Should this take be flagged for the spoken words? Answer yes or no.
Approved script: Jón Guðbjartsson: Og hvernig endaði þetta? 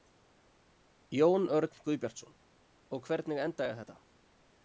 yes